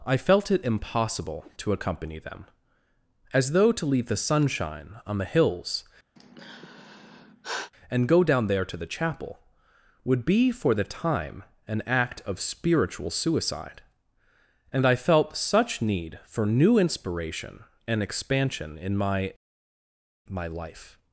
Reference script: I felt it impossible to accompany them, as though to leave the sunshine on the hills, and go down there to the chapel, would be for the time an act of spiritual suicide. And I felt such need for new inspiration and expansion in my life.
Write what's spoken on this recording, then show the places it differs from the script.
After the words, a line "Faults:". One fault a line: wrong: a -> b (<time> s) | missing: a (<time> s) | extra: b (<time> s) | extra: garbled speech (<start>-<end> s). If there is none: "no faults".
I felt it impossible to accompany them, as though to leave the sunshine on the hills, and go down there to the chapel, would be for the time an act of spiritual suicide. And I felt such need for new inspiration and expansion in my my life.
Faults:
extra: my (20.3 s)